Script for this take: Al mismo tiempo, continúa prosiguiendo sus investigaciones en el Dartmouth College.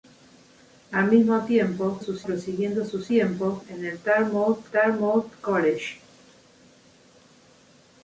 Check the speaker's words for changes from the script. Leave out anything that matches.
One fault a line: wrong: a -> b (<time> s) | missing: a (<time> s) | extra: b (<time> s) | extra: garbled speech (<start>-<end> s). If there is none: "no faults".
wrong: continúa -> sus (2.0 s)
wrong: investigaciones -> tiempo (3.1 s)
extra: Dartmouth (4.7 s)